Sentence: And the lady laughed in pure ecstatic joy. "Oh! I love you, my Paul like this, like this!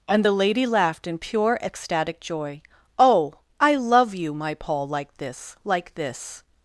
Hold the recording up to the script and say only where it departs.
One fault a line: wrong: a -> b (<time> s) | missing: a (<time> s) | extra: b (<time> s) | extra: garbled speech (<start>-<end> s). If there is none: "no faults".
no faults